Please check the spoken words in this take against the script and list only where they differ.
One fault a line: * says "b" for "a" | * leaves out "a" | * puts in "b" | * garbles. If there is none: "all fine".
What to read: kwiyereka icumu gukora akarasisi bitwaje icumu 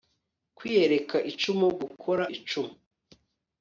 * leaves out "akarasisi bitwaje"